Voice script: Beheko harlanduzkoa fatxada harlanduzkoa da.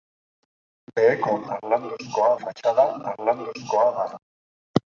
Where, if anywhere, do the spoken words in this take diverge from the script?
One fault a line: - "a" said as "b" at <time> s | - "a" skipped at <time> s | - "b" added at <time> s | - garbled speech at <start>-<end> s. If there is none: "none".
none